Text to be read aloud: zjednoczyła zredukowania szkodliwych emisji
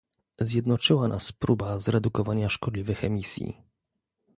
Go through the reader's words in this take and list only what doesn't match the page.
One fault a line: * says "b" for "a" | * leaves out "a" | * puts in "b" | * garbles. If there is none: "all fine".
* puts in "nas próba"